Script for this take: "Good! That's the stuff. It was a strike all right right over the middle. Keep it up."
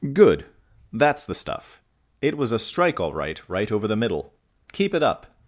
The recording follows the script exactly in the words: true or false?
true